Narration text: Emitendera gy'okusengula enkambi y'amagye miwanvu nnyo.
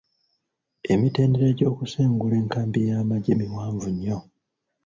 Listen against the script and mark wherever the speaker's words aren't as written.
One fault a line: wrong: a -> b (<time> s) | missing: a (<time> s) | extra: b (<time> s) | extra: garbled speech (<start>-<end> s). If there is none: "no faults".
no faults